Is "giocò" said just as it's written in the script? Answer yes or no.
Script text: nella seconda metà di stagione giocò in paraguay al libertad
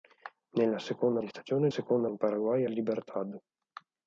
no